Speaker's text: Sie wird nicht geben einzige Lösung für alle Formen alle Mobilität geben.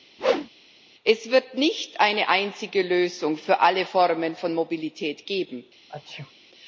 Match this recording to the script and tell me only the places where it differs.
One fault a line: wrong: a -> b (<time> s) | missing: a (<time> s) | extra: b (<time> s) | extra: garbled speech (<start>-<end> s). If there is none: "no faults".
wrong: Sie -> Es (1.0 s)
wrong: geben -> eine (2.0 s)
wrong: alle -> von (4.3 s)